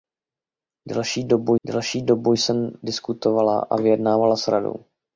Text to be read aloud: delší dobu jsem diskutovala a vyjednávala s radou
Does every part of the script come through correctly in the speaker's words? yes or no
no